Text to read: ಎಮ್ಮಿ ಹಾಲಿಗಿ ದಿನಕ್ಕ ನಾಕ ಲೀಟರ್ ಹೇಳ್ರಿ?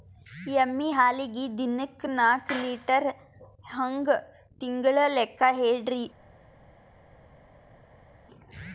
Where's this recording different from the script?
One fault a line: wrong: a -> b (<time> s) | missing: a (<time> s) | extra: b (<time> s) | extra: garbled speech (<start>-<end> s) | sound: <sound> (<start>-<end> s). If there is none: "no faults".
extra: ಹಂಗ ತಿಂಗಳ ಲೆಕ್ಕ (3.7 s)